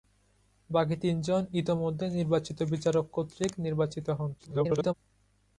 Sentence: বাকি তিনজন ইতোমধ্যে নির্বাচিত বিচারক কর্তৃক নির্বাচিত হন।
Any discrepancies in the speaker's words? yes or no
yes